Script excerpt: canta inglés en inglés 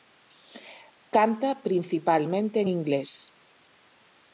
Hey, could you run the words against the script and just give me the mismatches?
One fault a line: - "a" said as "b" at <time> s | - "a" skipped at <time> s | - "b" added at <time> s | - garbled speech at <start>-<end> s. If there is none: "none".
- "inglés" said as "principalmente" at 1.6 s